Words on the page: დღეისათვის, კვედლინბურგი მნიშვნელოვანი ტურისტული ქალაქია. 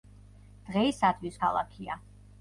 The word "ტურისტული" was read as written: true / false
false